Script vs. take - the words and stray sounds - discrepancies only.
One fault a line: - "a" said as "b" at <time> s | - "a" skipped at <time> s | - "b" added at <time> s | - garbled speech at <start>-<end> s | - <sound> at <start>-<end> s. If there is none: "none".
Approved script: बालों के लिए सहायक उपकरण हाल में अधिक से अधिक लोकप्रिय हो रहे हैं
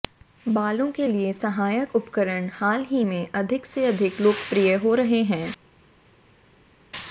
- "ही" added at 2.9 s